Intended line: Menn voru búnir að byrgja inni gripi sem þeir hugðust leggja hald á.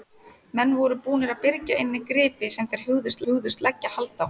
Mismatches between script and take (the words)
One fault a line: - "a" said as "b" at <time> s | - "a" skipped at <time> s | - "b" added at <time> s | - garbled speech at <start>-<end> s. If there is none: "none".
- "hugðust" added at 3.3 s